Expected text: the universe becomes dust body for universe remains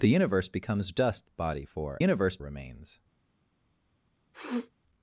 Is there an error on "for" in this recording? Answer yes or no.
no